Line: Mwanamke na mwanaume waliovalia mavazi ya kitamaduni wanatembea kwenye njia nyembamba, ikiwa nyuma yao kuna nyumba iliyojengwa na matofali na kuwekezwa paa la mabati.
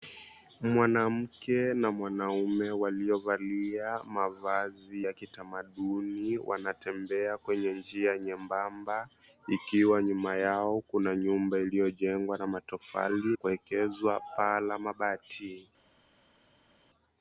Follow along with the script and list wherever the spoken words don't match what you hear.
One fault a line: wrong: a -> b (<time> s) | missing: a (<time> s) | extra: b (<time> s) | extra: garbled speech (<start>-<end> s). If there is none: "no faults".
missing: na (13.4 s)